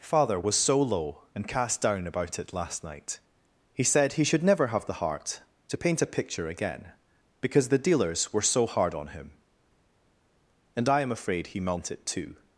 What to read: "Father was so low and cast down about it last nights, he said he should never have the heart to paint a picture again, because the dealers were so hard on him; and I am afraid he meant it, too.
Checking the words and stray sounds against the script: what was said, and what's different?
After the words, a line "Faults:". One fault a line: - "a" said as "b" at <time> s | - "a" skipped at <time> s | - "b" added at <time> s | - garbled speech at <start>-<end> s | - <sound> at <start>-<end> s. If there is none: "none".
"Father was so low and cast down about it last night, he said he should never have the heart to paint a picture again, because the dealers were so hard on him; and I am afraid he meant it, too.
Faults:
- "nights" said as "night" at 2.8 s